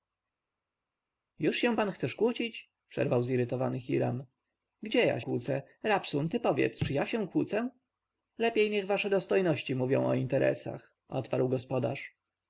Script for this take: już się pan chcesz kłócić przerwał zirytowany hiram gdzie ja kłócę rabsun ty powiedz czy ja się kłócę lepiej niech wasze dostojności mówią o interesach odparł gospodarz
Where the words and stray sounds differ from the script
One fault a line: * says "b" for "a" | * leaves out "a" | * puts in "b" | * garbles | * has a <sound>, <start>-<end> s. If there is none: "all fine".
all fine